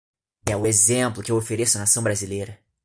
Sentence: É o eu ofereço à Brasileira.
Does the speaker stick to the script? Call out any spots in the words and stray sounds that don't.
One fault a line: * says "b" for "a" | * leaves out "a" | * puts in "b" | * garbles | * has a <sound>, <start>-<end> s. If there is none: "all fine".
* puts in "exemplo que"
* puts in "Nação"